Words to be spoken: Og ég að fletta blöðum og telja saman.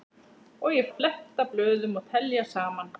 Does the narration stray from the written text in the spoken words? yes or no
no